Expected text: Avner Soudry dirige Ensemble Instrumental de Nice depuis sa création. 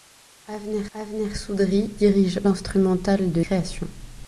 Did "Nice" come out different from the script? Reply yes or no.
yes